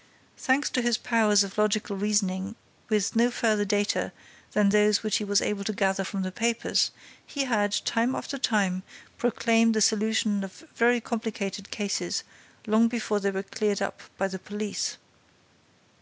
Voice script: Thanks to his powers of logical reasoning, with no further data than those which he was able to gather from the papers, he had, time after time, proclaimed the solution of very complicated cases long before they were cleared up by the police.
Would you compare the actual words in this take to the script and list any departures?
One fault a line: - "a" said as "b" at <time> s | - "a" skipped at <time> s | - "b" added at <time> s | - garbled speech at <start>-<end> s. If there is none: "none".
none